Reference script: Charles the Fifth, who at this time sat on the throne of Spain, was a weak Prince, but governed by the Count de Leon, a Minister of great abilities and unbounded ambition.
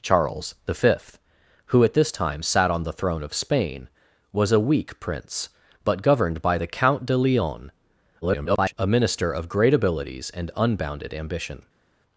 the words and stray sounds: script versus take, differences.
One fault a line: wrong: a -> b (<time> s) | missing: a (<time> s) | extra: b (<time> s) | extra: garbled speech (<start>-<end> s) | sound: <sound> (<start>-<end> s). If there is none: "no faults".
extra: garbled speech (8.2-8.7 s)